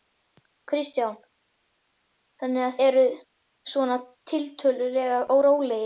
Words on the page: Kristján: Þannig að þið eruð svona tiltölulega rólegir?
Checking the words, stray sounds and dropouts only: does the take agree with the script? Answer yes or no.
no